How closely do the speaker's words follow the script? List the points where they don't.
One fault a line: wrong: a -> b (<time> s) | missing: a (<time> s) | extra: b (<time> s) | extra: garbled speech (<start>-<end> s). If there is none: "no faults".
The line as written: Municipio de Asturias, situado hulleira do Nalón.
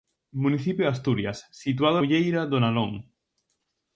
no faults